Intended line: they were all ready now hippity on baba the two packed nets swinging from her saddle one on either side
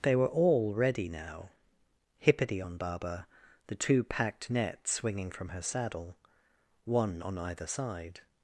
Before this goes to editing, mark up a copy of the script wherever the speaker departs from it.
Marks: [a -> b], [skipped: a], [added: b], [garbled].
they were all ready now hippity on baba the two packed nets swinging from her saddle one on either side